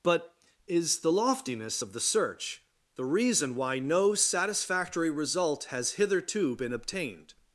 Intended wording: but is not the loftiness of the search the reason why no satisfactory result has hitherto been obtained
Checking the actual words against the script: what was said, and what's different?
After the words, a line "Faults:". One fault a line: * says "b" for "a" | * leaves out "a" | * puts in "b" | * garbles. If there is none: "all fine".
but is the loftiness of the search the reason why no satisfactory result has hitherto been obtained
Faults:
* leaves out "not"